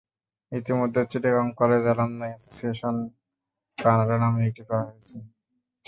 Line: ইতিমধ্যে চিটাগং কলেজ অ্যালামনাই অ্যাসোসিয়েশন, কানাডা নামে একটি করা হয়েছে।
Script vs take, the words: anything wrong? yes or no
no